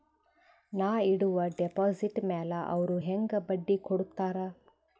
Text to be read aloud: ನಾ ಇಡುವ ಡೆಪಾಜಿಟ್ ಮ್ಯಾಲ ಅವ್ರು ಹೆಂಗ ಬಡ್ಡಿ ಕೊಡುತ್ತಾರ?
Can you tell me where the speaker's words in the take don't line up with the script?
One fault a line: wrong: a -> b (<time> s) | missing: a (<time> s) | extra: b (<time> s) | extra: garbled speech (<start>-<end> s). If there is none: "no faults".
no faults